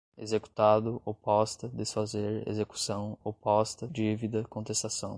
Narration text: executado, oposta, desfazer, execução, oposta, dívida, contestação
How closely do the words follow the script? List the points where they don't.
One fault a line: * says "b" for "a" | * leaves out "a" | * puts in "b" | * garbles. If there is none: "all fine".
all fine